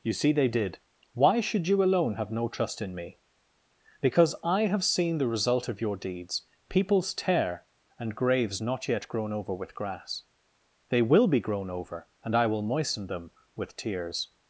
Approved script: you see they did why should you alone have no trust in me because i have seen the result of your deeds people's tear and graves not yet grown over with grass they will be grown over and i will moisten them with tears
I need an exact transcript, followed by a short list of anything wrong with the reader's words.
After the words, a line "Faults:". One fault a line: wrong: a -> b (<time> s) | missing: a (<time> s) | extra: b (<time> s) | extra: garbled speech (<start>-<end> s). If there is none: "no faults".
you see they did why should you alone have no trust in me because i have seen the result of your deeds people's tear and graves not yet grown over with grass they will be grown over and i will moisten them with tears
Faults:
no faults